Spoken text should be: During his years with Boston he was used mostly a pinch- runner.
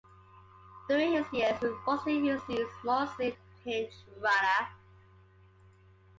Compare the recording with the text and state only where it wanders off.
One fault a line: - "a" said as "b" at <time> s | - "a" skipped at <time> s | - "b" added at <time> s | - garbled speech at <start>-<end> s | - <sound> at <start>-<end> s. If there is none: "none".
none